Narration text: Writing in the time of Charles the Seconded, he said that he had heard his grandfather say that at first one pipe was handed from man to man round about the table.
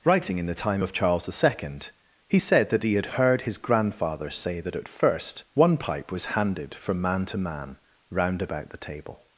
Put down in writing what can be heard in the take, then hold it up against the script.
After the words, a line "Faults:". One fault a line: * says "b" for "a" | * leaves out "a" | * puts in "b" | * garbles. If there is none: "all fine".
Writing in the time of Charles the Second, he said that he had heard his grandfather say that at first one pipe was handed from man to man round about the table.
Faults:
* says "Second" for "Seconded"